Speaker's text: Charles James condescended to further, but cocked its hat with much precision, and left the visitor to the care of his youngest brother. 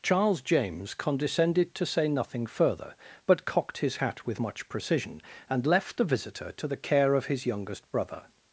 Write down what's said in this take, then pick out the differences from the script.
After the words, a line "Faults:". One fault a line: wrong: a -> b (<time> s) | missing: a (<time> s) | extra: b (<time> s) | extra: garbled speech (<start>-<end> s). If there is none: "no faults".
Charles James condescended to say nothing further, but cocked his hat with much precision, and left the visitor to the care of his youngest brother.
Faults:
extra: say nothing (1.9 s)
wrong: its -> his (3.8 s)